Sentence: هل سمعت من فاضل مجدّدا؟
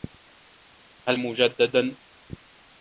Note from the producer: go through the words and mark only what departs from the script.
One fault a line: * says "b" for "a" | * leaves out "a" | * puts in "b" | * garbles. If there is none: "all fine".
* leaves out "سمعت من فاضل"